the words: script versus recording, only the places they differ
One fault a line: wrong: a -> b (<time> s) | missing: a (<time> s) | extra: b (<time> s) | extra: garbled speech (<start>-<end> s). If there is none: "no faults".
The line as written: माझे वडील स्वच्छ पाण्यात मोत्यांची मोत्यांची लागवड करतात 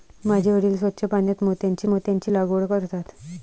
no faults